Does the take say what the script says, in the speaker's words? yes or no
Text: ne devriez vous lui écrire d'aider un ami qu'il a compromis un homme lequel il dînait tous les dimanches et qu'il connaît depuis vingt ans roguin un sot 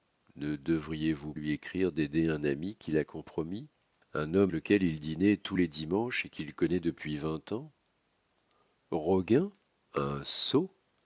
yes